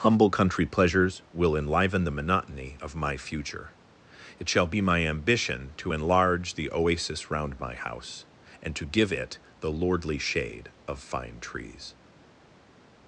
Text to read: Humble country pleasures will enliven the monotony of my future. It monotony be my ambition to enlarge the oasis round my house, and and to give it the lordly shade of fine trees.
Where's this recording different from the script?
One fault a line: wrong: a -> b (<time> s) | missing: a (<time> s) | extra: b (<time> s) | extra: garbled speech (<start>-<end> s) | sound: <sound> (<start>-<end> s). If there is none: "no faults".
wrong: monotony -> shall (4.5 s)
missing: and (8.8 s)